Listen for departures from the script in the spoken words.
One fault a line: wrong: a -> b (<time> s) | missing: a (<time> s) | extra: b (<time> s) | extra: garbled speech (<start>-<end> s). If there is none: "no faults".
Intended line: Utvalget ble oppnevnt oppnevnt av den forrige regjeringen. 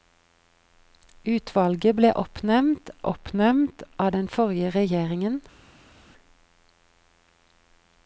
no faults